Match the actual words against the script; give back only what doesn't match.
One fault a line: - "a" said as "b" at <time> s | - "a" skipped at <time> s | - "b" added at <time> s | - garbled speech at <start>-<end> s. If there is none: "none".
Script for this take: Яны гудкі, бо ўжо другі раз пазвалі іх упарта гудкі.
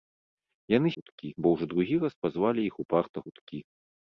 none